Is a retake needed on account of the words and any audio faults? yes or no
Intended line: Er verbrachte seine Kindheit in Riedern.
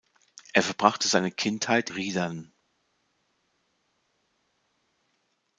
yes